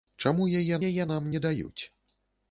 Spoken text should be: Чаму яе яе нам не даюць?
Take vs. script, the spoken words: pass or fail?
pass